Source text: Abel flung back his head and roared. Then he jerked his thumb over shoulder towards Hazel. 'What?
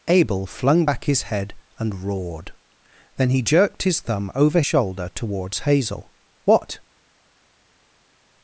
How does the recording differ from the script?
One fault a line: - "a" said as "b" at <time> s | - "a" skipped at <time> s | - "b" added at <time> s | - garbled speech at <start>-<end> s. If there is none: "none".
none